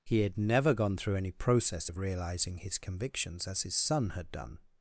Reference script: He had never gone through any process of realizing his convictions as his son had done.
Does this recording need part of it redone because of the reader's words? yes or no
no